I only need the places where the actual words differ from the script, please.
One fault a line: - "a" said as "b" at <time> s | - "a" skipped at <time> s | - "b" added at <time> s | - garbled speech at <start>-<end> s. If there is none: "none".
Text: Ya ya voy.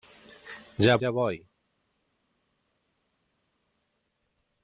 none